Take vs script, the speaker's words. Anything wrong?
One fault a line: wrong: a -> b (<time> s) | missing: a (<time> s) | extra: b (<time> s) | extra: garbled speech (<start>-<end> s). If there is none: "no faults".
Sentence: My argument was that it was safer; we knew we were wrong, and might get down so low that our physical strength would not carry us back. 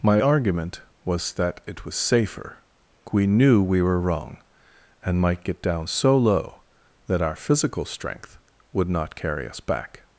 no faults